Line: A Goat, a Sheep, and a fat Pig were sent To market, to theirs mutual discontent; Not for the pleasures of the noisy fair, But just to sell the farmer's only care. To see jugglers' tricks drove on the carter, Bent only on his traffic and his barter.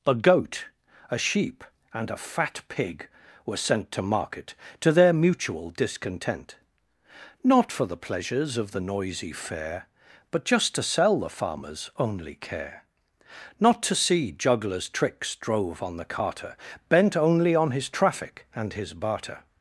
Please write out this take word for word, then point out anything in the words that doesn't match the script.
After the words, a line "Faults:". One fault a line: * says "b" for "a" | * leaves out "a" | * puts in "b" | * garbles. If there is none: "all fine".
A Goat, a Sheep, and a fat Pig were sent To market, to their mutual discontent; Not for the pleasures of the noisy fair, But just to sell the farmer's only care. Not to see jugglers' tricks drove on the carter, Bent only on his traffic and his barter.
Faults:
* says "their" for "theirs"
* puts in "Not"